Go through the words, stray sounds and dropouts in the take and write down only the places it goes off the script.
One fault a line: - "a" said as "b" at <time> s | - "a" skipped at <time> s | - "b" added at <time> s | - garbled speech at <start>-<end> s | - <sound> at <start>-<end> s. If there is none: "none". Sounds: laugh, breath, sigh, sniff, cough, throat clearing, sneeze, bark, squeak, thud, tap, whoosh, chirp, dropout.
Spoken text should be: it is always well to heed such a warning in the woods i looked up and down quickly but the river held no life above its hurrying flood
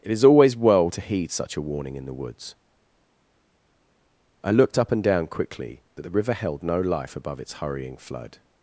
none